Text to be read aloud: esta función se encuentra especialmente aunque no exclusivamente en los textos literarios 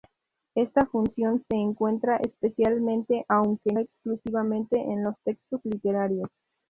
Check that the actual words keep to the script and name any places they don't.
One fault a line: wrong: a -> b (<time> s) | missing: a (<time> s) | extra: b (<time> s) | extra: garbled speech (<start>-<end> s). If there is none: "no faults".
missing: no (3.8 s)